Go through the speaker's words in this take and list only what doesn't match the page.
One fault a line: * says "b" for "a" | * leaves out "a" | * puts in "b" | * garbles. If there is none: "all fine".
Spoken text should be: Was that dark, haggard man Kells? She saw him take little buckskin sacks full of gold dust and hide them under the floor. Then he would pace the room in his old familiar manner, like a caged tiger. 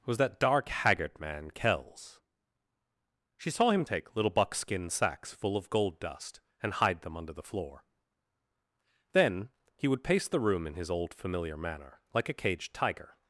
all fine